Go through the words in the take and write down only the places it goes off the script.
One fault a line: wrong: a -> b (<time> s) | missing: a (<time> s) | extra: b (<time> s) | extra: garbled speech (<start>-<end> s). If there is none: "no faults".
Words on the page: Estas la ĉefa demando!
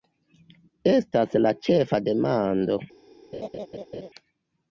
no faults